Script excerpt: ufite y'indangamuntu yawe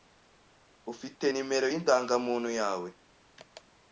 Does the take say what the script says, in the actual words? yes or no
no